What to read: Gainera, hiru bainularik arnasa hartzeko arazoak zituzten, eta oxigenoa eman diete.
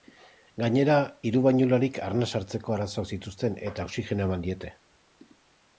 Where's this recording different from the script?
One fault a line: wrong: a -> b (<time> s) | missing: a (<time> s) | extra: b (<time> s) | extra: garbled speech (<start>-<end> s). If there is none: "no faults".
no faults